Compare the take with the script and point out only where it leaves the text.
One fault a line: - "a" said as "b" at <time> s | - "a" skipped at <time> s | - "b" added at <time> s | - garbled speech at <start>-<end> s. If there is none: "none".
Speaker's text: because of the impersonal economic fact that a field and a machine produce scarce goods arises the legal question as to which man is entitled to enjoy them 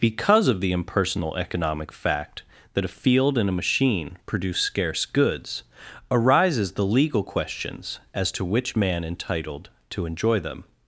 - "question" said as "questions" at 7.2 s
- "is" skipped at 9.0 s